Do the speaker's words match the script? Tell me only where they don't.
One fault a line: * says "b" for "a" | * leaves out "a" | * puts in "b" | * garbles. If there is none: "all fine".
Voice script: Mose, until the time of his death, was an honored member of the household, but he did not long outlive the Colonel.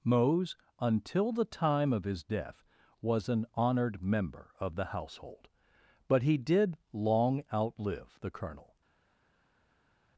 * leaves out "not"